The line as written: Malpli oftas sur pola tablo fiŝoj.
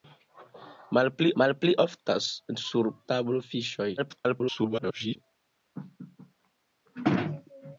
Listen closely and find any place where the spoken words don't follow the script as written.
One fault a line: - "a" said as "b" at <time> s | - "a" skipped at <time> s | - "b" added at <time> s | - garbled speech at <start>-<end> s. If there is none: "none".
- "malpli" added at 1.4 s
- "pola" skipped at 2.9 s
- garbled speech at 4.0-5.2 s